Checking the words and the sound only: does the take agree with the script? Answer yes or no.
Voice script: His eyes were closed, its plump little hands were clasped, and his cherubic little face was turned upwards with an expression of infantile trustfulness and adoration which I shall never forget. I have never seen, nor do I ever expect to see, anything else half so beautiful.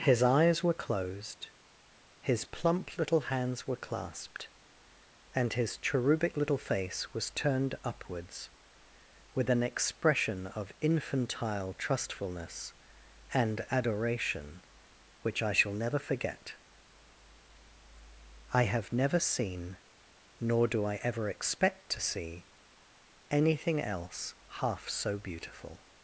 no